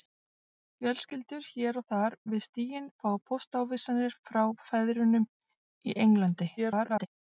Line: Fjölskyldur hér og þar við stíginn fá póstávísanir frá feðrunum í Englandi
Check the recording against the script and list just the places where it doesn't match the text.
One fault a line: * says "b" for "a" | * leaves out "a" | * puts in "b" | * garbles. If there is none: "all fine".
* garbles